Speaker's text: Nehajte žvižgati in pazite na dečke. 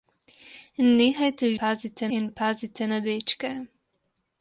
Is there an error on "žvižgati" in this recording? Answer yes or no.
yes